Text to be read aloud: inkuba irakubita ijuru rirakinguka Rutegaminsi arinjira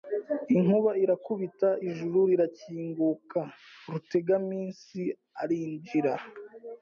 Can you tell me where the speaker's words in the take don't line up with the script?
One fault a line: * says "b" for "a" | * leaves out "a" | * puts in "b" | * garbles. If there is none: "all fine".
all fine